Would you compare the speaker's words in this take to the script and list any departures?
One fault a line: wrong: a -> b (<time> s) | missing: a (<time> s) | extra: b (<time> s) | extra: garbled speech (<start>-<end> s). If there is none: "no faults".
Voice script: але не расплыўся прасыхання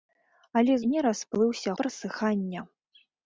no faults